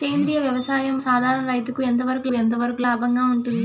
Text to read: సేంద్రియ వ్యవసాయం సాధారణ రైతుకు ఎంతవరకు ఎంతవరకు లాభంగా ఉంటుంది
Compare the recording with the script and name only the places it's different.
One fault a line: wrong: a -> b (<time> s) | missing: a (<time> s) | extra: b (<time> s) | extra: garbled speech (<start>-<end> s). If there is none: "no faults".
no faults